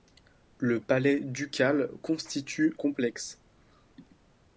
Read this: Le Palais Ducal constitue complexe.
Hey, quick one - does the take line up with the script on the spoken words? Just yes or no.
yes